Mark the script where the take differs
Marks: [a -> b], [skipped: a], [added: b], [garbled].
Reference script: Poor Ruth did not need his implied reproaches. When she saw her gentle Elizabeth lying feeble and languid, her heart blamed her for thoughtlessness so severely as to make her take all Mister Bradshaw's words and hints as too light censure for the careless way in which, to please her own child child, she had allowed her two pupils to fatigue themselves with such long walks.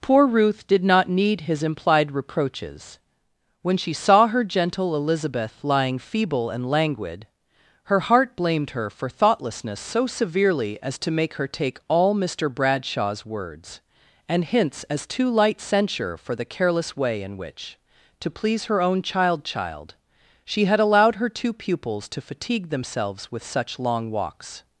Poor Ruth did not need his implied reproaches. When she saw her gentle Elizabeth lying feeble and languid, her heart blamed her for thoughtlessness so severely as to make her take all Mister Bradshaw's words and hints as too light censure for the careless way in which, to please her own child child, she had allowed her two pupils to fatigue themselves with such long walks.